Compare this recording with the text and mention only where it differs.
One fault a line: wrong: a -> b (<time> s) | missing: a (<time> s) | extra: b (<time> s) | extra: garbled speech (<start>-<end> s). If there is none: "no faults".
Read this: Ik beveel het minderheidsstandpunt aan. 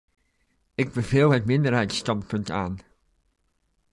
no faults